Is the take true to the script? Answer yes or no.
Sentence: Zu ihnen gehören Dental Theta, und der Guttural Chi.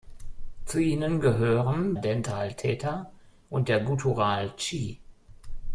yes